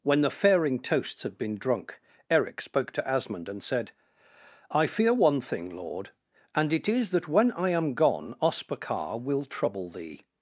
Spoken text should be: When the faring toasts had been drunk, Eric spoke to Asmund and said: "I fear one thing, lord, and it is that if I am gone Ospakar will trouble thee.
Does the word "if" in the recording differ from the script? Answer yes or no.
yes